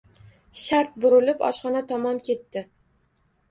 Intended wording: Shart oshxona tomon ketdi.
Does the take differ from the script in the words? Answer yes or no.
yes